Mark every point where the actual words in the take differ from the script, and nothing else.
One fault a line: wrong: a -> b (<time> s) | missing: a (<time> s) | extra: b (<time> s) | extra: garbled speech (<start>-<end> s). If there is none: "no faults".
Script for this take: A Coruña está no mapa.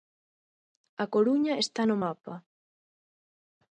no faults